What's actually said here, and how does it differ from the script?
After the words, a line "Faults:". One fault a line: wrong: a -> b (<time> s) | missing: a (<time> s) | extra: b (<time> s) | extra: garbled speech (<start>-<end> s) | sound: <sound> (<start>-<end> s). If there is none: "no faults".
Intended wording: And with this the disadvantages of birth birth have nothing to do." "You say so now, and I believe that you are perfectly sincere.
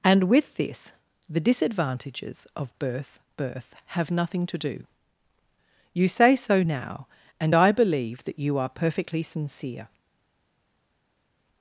And with this the disadvantages of birth birth have nothing to do." "You say so now, and I believe that you are perfectly sincere.
Faults:
no faults